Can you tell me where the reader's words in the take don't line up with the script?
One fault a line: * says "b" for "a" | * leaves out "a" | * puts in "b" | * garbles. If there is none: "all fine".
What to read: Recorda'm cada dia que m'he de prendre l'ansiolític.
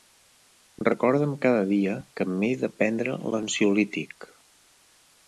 all fine